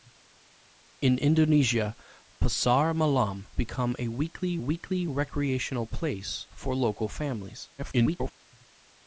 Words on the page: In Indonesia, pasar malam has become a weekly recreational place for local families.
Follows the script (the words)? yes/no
no